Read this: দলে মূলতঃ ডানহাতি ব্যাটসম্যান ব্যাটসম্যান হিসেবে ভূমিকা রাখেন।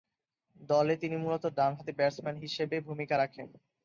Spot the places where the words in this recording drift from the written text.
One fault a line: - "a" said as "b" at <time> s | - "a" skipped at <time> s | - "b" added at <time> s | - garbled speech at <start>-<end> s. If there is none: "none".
- "তিনি" added at 1.0 s
- "ব্যাটসম্যান" skipped at 2.4 s